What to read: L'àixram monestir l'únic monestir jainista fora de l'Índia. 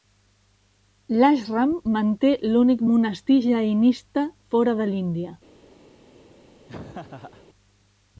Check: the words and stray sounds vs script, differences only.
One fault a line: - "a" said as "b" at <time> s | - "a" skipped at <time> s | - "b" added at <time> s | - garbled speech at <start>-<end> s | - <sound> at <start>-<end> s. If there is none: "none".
- "monestir" said as "manté" at 2.0 s
- laugh at 6.7-7.5 s